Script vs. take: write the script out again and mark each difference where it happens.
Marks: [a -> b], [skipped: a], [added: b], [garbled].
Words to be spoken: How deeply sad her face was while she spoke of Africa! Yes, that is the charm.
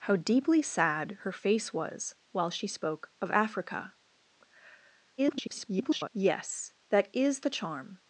How deeply sad her face was while she spoke of Africa! [garbled] Yes, that is the charm.